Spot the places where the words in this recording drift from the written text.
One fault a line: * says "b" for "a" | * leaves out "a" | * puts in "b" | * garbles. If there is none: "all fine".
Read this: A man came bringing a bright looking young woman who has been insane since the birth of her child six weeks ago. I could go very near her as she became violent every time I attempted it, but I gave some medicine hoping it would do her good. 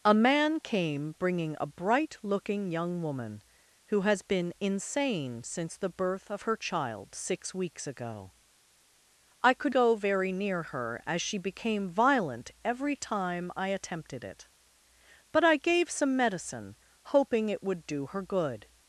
all fine